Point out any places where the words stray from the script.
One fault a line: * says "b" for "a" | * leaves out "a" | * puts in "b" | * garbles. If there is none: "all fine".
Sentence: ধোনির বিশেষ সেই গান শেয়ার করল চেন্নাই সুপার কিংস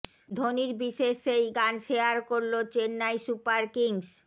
all fine